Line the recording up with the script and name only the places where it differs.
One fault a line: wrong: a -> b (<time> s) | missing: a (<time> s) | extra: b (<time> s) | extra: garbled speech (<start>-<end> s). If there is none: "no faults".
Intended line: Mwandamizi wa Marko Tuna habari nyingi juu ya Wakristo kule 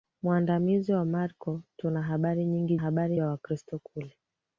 wrong: juu -> habari (2.7 s)